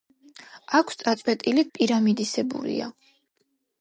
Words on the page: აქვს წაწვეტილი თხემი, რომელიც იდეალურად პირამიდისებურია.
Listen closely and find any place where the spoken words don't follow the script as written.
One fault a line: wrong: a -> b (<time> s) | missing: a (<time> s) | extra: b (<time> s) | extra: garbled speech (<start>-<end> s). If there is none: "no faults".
missing: თხემი რომელიც იდეალურად (1.6 s)